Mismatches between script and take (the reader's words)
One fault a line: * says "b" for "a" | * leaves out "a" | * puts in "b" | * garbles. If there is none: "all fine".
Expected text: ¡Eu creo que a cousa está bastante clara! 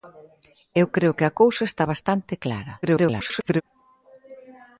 * garbles